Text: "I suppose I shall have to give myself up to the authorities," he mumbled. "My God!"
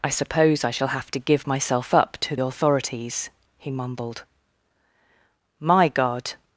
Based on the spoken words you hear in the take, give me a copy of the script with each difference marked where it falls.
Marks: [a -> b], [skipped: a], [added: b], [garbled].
"I suppose I shall have to give myself up to [skipped: the] authorities," he mumbled. "My God!"